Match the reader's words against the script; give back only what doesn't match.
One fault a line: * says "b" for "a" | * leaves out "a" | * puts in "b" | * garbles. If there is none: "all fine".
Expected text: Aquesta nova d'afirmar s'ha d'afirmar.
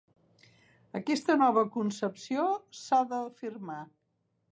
* says "concepció" for "d'afirmar"